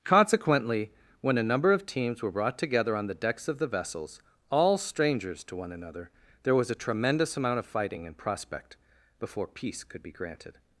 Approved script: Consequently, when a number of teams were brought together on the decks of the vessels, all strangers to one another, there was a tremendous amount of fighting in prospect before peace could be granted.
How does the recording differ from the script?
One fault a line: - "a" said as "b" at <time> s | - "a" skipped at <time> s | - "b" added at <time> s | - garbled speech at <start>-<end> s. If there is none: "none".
none